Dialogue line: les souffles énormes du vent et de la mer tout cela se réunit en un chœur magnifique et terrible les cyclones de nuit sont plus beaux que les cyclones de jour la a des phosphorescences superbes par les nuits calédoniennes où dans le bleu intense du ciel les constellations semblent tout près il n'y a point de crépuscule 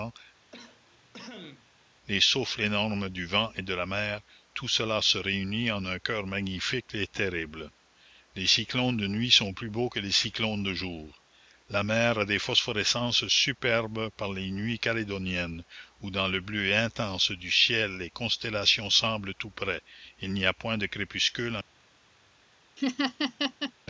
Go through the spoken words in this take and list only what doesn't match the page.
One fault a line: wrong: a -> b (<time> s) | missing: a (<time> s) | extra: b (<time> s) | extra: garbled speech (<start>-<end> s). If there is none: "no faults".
extra: mer (11.8 s)